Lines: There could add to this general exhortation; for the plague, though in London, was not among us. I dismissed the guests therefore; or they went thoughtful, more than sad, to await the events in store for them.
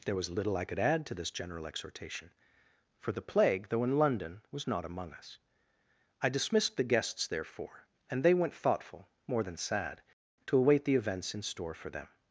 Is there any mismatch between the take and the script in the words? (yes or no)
yes